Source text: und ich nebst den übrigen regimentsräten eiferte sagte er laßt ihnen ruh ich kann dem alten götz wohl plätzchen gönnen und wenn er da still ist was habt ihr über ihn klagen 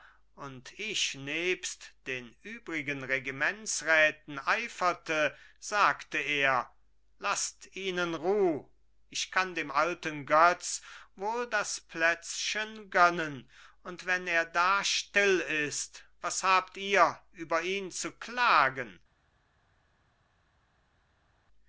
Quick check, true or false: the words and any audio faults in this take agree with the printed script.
false